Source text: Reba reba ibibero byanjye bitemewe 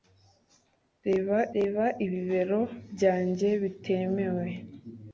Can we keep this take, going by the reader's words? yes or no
yes